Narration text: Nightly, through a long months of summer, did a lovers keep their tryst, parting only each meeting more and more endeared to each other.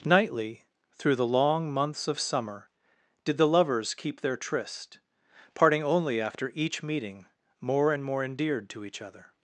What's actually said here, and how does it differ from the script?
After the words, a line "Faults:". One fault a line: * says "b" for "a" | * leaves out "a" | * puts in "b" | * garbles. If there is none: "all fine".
Nightly, through the long months of summer, did the lovers keep their tryst, parting only after each meeting more and more endeared to each other.
Faults:
* says "the" for "a"
* says "the" for "a"
* puts in "after"